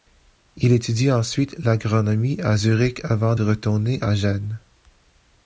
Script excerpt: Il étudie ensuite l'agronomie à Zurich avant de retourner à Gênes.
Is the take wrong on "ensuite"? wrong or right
right